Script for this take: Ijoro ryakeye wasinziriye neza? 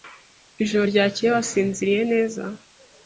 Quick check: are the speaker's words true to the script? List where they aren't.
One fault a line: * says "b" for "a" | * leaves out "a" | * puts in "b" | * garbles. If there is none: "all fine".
all fine